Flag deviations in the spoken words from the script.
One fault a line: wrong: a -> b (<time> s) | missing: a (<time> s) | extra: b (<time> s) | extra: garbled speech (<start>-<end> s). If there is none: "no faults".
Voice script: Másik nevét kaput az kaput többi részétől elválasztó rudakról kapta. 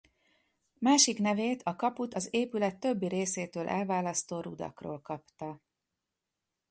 extra: a (1.6 s)
wrong: kaput -> épület (2.3 s)